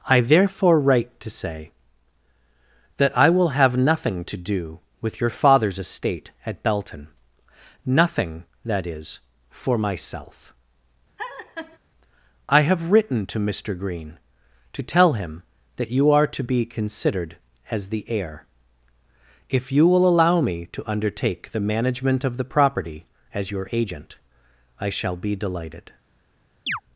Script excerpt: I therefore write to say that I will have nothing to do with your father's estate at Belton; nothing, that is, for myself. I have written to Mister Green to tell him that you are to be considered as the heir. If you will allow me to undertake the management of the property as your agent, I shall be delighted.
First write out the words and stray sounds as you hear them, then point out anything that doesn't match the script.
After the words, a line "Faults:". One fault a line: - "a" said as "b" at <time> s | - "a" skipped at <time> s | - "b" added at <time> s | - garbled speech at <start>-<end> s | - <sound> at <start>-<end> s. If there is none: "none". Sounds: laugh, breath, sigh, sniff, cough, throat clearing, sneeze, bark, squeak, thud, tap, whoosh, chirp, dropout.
I therefore write to say that I will have nothing to do with your father's estate at Belton; nothing, that is, for myself. I have written to Mister Green to tell him that you are to be considered as the heir. If you will allow me to undertake the management of the property as your agent, I shall be delighted.
Faults:
- laugh at 11.2-11.8 s
- chirp at 26.7-26.8 s